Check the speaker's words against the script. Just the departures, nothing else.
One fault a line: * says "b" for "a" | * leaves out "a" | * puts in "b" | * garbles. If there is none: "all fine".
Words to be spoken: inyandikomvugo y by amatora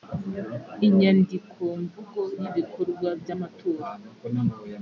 * puts in "ibikorwa"